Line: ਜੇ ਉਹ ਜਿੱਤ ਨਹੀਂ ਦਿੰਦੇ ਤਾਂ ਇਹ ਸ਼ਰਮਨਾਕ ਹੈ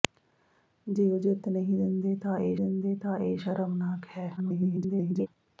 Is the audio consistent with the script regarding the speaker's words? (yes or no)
no